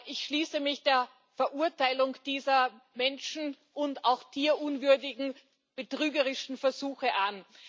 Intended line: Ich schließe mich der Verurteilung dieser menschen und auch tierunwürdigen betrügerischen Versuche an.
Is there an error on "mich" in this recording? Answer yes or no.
no